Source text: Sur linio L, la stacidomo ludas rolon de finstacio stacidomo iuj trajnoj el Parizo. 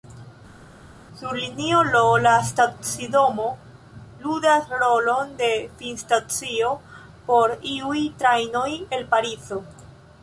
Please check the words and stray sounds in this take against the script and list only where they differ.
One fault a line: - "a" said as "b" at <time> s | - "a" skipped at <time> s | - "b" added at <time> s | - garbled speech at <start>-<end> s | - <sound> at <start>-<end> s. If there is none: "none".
- "stacidomo" said as "por" at 7.3 s